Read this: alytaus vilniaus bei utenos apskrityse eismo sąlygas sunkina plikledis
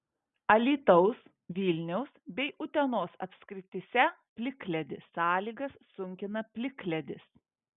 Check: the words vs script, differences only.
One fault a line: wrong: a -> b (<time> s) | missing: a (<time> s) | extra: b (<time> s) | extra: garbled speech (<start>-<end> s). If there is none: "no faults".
wrong: eismo -> plikledis (4.4 s)